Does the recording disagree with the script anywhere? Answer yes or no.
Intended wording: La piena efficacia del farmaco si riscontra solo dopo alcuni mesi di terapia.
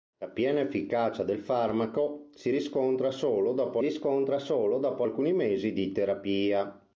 yes